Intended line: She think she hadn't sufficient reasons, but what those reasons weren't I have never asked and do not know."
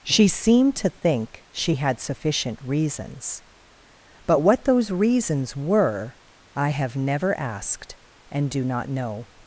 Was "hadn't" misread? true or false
true